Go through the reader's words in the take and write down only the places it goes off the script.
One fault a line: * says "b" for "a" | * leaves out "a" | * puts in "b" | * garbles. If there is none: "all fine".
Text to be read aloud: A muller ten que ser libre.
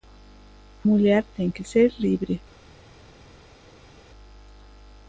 all fine